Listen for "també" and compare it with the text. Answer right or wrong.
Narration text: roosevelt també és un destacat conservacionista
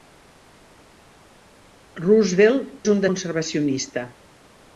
wrong